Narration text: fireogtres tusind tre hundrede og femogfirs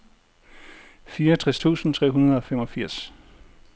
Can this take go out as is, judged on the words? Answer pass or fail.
pass